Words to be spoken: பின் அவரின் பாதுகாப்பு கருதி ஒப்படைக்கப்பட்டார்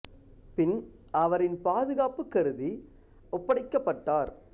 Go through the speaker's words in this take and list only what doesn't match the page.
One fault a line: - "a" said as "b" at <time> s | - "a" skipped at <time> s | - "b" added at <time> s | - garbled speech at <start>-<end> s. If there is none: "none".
none